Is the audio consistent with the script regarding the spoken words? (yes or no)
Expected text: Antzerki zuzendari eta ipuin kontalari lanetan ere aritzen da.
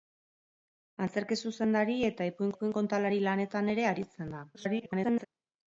no